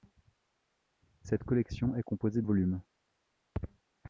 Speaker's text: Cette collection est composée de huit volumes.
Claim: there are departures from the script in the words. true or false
true